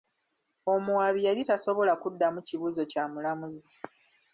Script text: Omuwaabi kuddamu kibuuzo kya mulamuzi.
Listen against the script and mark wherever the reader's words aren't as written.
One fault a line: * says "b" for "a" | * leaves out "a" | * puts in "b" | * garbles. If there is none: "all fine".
* puts in "yali tasobola"